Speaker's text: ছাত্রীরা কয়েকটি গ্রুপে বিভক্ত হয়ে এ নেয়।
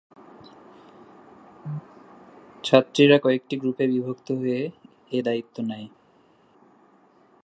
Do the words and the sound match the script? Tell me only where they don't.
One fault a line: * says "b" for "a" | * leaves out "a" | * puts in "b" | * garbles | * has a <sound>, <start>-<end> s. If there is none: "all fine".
* puts in "দায়িত্ব"